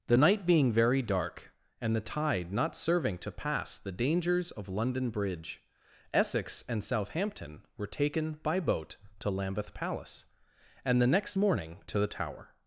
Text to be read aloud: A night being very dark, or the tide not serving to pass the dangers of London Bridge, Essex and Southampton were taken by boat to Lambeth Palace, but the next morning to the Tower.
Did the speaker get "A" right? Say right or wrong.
wrong